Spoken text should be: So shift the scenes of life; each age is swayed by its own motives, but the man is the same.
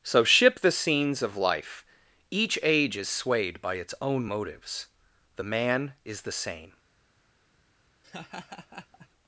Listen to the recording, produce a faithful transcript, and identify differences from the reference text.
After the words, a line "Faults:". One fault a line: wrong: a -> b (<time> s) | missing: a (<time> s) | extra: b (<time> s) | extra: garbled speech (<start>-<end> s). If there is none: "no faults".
So ship the scenes of life; each age is swayed by its own motives, the man is the same.
Faults:
wrong: shift -> ship (0.2 s)
missing: but (4.9 s)